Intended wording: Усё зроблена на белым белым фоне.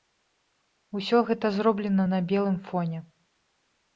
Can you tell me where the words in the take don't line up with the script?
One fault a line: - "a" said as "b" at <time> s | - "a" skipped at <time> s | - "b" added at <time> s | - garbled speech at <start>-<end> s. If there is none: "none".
- "гэта" added at 1.3 s
- "белым" skipped at 2.6 s